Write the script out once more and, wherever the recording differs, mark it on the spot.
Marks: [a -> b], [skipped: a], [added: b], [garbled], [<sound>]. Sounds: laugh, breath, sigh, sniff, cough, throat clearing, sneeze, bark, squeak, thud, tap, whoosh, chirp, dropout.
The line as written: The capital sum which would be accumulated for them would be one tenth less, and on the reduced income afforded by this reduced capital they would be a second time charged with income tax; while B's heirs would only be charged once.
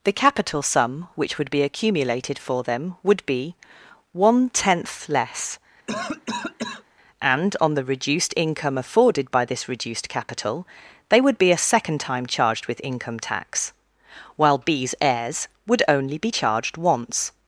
The capital sum which would be accumulated for them would be one tenth less, [cough] and on the reduced income afforded by this reduced capital they would be a second time charged with income tax; while B's heirs would only be charged once.